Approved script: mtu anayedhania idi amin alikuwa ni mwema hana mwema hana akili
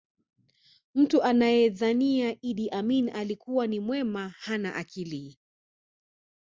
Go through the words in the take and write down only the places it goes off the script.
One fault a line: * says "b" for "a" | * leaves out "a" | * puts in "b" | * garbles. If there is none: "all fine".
* leaves out "mwema hana"